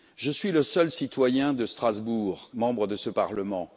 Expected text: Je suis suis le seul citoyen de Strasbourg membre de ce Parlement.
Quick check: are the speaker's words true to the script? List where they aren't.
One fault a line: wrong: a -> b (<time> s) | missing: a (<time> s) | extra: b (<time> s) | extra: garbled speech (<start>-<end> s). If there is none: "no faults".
missing: suis (0.5 s)